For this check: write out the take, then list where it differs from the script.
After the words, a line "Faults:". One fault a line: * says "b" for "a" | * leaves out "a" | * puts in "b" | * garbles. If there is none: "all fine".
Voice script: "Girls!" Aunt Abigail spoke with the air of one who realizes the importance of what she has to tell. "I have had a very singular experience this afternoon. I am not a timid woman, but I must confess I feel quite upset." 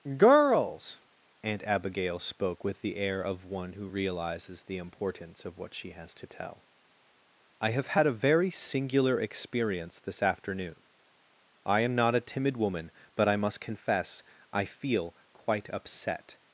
"Girls!" Aunt Abigail spoke with the air of one who realizes the importance of what she has to tell. "I have had a very singular experience this afternoon. I am not a timid woman, but I must confess I feel quite upset."
Faults:
all fine